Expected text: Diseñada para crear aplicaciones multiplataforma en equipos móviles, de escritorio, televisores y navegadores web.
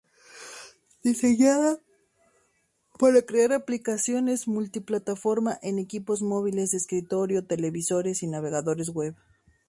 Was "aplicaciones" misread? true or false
false